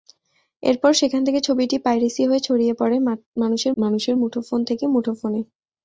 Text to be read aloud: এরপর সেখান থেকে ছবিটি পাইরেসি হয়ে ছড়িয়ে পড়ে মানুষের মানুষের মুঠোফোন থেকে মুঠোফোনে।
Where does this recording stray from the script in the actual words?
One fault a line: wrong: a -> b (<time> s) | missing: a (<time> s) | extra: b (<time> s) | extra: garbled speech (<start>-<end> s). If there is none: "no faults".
no faults